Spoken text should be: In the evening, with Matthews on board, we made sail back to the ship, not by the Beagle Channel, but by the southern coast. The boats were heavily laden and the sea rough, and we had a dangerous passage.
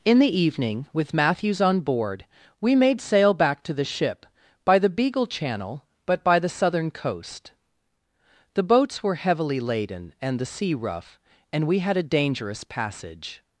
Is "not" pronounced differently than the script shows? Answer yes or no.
yes